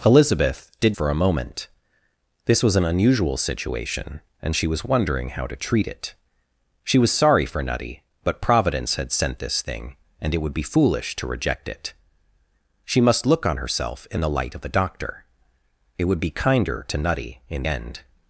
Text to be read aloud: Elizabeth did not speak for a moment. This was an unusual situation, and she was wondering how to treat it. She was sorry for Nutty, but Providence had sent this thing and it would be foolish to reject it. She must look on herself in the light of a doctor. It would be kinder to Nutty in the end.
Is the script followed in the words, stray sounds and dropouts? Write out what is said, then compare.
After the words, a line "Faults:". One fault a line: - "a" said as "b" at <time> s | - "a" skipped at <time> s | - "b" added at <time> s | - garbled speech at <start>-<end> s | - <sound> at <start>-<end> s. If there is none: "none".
Elizabeth did for a moment. This was an unusual situation, and she was wondering how to treat it. She was sorry for Nutty, but Providence had sent this thing and it would be foolish to reject it. She must look on herself in the light of a doctor. It would be kinder to Nutty in end.
Faults:
- "not speak" skipped at 0.9 s
- "the" skipped at 17.6 s